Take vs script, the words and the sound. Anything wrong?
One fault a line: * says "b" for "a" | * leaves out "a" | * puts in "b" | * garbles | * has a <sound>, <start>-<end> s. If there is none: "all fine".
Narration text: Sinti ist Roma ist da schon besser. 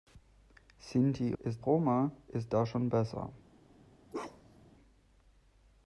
* has a bark, 4.1-4.7 s